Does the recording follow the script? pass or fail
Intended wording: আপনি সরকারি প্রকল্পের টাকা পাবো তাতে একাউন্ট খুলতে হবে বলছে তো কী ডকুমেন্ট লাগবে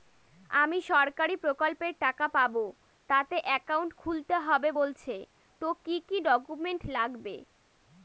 fail